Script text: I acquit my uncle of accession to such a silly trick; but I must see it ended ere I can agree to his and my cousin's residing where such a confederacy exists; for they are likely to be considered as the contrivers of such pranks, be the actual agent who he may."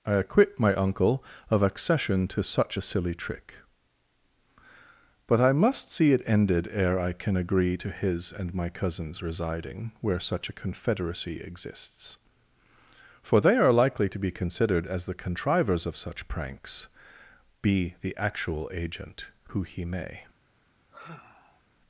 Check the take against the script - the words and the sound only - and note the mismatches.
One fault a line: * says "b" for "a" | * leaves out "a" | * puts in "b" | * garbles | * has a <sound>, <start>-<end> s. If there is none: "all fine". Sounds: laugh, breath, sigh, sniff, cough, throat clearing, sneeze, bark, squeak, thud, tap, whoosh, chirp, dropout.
* has a sigh, 20.9-21.6 s